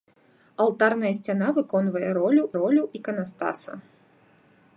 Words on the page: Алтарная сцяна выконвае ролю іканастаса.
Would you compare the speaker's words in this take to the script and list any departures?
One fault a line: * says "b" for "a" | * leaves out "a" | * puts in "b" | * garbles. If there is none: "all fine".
* puts in "ролю"